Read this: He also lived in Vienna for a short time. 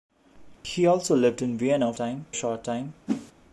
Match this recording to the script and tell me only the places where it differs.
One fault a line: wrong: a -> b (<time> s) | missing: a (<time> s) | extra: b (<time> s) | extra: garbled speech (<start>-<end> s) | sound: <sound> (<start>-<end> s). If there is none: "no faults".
sound: dropout (0.5-0.6 s)
wrong: for -> time (2.0 s)
sound: whoosh (3.1-3.3 s)